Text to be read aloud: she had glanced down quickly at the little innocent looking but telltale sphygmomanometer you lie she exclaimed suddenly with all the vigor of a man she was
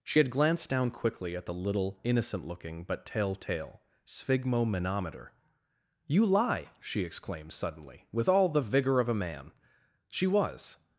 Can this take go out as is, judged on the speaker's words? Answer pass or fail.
pass